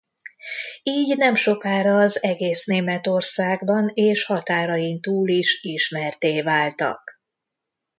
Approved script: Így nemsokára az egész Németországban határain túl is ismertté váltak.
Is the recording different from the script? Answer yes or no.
yes